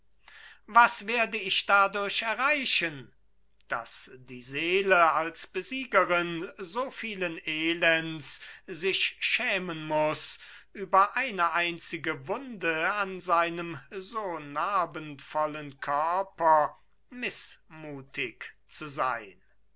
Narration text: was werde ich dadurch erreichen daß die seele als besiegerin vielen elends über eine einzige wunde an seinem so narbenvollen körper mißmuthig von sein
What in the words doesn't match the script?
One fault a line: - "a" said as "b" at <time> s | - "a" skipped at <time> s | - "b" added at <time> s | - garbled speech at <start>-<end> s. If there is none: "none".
- "so" added at 6.6 s
- "sich schämen muß" added at 8.7 s
- "von" said as "zu" at 18.7 s